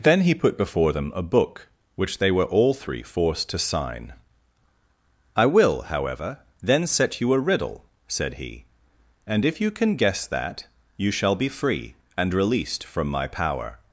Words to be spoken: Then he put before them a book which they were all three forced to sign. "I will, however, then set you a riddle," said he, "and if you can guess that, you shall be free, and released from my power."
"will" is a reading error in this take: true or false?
false